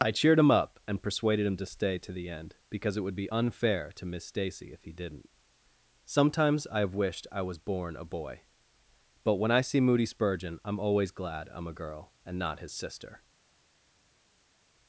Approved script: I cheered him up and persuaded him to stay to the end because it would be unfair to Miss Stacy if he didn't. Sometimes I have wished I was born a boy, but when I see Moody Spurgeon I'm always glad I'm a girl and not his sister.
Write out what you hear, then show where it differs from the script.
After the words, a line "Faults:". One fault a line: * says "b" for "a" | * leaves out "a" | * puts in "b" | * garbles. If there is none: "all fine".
I cheered him up and persuaded him to stay to the end because it would be unfair to Miss Stacy if he didn't. Sometimes I have wished I was born a boy, but when I see Moody Spurgeon I'm always glad I'm a girl and not his sister.
Faults:
all fine